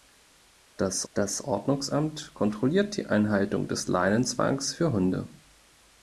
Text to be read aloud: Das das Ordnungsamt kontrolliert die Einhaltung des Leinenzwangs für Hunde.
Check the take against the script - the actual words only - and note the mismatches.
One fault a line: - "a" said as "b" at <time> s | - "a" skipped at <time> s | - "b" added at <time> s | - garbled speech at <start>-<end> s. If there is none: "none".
none